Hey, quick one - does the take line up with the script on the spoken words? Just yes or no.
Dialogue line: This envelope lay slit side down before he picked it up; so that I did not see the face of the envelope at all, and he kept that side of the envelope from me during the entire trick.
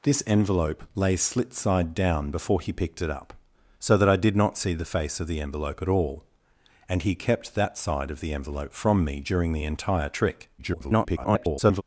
no